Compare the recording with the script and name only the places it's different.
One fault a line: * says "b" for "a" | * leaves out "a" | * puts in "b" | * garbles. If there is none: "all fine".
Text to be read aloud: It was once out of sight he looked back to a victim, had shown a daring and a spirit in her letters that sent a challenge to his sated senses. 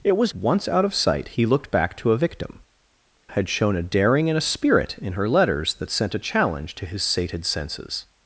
all fine